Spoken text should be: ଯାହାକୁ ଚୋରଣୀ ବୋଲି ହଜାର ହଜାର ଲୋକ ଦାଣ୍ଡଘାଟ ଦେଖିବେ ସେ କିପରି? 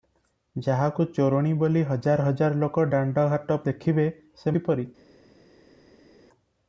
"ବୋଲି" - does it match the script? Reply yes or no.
yes